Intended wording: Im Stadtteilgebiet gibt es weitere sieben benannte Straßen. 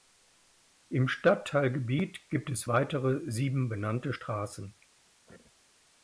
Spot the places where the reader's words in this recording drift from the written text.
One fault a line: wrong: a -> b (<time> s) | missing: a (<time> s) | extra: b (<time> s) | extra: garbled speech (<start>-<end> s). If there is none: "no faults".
no faults